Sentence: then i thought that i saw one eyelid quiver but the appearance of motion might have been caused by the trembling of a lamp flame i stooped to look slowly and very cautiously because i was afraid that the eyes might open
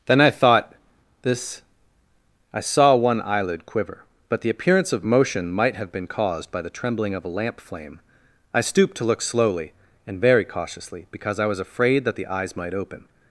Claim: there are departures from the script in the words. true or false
true